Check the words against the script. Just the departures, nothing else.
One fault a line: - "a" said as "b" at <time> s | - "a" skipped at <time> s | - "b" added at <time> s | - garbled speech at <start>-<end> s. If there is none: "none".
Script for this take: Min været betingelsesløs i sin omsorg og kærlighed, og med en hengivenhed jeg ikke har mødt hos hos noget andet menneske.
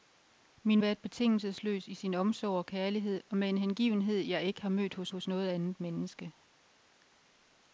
none